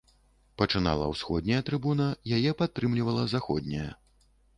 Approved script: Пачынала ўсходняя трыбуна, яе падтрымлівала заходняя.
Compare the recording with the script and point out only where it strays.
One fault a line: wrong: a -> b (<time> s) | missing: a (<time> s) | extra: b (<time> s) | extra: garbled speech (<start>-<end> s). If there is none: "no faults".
no faults